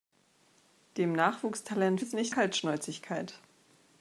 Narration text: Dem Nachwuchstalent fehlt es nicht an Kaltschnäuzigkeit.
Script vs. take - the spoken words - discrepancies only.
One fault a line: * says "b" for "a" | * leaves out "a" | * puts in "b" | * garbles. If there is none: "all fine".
* leaves out "fehlt"
* leaves out "an"